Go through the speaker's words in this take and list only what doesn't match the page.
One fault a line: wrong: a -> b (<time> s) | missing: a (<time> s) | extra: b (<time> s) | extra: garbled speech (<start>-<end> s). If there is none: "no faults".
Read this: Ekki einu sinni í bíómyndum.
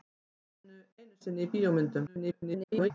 extra: garbled speech (2.1-2.9 s)